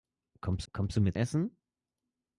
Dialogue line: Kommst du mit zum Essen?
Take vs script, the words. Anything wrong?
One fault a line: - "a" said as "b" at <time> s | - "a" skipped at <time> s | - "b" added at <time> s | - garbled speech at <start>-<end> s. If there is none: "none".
- "kommst" added at 0.7 s
- "zum" skipped at 1.2 s